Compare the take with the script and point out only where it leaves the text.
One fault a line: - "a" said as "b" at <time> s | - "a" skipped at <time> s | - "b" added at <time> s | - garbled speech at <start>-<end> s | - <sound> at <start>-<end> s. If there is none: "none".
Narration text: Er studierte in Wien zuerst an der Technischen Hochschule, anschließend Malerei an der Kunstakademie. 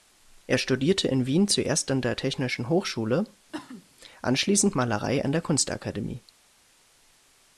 - cough at 3.5-3.9 s